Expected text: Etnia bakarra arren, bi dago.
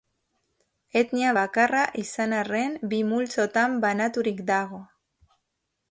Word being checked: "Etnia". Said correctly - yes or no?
yes